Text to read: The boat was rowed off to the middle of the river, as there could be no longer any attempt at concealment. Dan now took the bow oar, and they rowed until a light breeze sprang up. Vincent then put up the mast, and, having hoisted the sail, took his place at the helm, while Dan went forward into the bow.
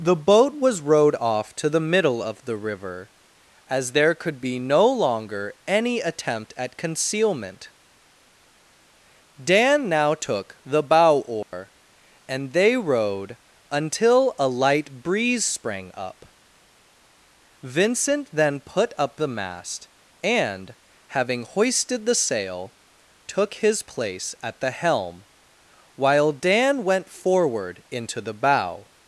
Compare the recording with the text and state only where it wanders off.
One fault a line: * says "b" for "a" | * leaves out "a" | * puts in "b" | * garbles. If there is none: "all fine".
all fine